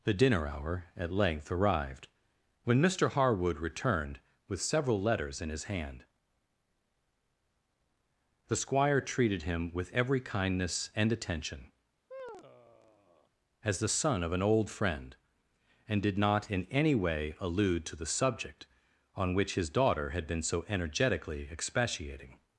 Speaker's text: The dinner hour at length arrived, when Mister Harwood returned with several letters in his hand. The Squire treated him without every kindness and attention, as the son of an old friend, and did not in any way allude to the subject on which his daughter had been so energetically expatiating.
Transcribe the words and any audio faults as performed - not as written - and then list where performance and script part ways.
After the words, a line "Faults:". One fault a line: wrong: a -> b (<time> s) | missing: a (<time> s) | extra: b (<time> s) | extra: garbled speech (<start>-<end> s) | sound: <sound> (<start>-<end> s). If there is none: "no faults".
The dinner hour at length arrived, when Mister Harwood returned with several letters in his hand. The Squire treated him with every kindness and attention, as the son of an old friend, and did not in any way allude to the subject on which his daughter had been so energetically expatiating.
Faults:
wrong: without -> with (9.7 s)
sound: sigh (12.1-13.3 s)